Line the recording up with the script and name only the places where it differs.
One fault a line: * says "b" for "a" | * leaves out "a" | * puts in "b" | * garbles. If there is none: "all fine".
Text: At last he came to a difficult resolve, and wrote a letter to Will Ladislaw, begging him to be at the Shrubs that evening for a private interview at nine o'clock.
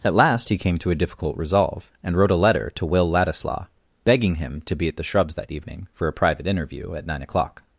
all fine